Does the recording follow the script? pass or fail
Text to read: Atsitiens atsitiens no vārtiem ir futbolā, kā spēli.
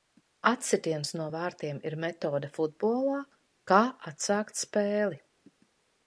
fail